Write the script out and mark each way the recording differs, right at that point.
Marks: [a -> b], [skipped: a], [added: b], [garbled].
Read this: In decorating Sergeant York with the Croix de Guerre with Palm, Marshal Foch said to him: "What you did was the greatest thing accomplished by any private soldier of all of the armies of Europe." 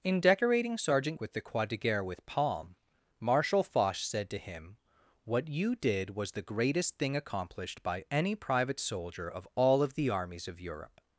In decorating Sergeant [skipped: York] with the Croix de Guerre with Palm, Marshal Foch said to him: "What you did was the greatest thing accomplished by any private soldier of all of the armies of Europe."